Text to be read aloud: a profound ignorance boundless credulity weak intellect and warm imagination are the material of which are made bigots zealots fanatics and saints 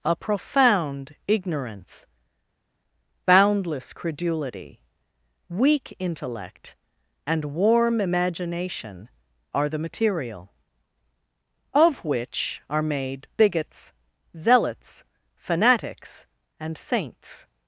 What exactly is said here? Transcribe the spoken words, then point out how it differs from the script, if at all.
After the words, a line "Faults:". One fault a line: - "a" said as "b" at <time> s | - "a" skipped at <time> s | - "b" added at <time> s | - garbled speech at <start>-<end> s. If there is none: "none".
a profound ignorance boundless credulity weak intellect and warm imagination are the material of which are made bigots zealots fanatics and saints
Faults:
none